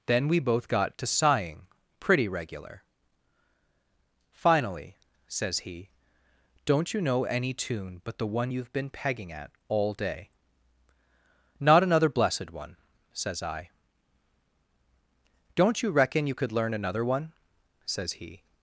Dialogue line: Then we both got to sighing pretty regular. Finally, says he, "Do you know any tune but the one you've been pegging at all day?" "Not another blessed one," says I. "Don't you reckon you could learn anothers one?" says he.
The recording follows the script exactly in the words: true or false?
false